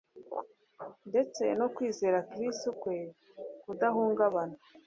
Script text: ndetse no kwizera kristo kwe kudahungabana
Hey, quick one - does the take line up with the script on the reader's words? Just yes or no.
yes